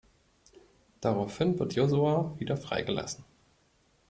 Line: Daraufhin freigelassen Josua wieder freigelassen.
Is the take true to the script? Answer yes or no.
no